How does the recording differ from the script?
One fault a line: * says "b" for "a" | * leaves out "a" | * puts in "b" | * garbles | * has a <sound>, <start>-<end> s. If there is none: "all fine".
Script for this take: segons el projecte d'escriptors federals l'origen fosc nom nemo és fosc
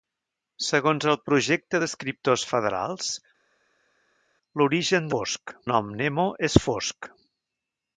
all fine